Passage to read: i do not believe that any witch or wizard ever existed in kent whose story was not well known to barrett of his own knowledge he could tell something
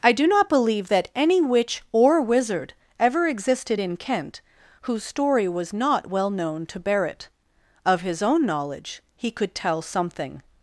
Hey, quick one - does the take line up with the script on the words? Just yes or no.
yes